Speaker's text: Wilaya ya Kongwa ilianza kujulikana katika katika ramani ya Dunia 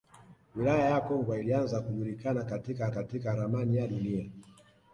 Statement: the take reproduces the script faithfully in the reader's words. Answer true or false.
true